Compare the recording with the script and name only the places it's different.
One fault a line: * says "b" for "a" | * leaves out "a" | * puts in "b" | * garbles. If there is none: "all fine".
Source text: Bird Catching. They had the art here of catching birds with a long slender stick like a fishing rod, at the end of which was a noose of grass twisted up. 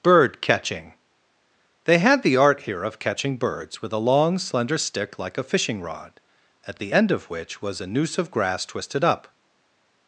all fine